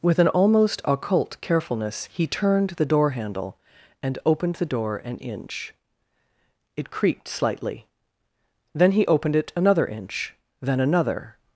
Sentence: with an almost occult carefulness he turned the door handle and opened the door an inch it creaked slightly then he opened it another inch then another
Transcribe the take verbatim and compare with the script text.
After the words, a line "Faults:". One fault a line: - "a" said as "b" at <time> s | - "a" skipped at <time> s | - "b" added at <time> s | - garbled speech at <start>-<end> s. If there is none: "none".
with an almost occult carefulness he turned the door handle and opened the door an inch it creaked slightly then he opened it another inch then another
Faults:
none